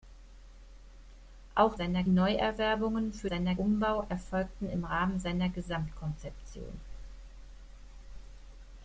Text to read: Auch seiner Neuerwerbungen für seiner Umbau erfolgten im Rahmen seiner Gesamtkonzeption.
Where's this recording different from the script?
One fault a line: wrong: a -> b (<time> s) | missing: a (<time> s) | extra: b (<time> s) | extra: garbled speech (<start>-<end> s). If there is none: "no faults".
no faults